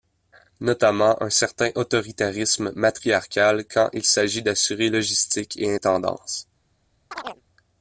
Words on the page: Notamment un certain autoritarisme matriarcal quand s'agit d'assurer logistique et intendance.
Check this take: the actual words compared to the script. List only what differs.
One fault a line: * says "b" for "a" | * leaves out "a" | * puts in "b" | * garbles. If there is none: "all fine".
* puts in "il"